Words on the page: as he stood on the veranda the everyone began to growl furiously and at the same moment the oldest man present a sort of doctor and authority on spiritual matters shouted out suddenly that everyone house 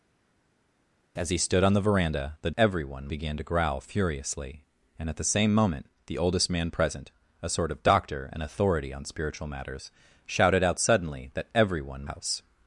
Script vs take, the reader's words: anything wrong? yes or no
no